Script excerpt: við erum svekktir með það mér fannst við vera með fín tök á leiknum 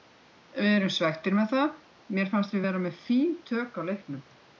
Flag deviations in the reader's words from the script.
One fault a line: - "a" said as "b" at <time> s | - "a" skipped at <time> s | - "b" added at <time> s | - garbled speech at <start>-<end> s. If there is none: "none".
none